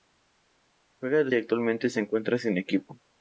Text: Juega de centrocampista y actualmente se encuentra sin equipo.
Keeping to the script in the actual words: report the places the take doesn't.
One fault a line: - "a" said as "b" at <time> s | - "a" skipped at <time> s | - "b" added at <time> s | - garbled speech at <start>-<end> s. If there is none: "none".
- "centrocampista" skipped at 1.3 s